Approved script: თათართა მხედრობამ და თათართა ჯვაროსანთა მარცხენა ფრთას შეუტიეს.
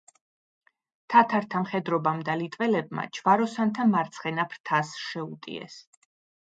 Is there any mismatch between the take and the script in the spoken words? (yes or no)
yes